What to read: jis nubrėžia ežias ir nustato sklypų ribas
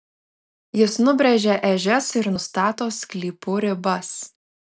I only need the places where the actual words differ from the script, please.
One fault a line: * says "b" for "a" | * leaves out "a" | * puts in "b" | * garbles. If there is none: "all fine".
all fine